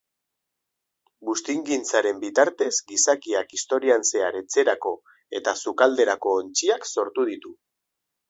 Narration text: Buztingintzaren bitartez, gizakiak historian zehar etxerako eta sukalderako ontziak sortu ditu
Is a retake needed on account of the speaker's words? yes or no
no